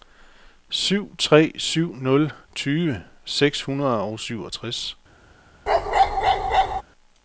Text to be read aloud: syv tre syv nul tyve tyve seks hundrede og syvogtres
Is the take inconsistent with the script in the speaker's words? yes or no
yes